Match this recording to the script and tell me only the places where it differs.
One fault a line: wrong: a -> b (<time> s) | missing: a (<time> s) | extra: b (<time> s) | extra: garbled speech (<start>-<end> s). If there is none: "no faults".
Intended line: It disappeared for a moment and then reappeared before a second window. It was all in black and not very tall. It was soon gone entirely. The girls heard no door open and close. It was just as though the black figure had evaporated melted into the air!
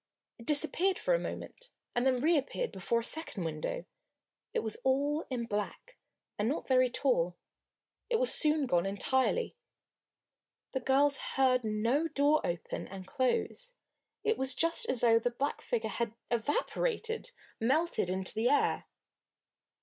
no faults